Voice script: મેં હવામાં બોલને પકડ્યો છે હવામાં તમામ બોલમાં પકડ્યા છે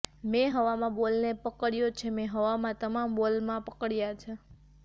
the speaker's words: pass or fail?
fail